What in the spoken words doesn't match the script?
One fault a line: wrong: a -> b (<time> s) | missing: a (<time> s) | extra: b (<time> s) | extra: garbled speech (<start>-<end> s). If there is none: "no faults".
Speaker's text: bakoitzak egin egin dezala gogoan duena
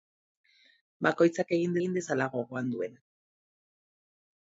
no faults